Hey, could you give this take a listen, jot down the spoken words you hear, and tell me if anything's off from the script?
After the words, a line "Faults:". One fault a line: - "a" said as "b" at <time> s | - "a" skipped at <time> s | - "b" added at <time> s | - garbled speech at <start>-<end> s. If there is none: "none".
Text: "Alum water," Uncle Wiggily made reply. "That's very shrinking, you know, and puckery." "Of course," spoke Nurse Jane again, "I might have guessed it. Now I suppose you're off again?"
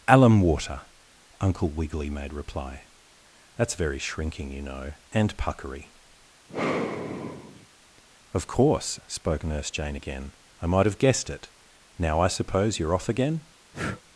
"Alum water," Uncle Wiggily made reply. "That's very shrinking, you know, and puckery." "Of course," spoke Nurse Jane again, "I might have guessed it. Now I suppose you're off again?"
Faults:
none